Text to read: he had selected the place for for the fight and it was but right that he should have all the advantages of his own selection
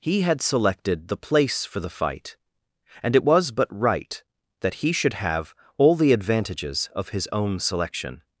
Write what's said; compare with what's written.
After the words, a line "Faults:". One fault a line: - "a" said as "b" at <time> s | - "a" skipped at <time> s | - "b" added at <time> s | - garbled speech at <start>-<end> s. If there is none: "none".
he had selected the place for the fight and it was but right that he should have all the advantages of his own selection
Faults:
- "for" skipped at 1.8 s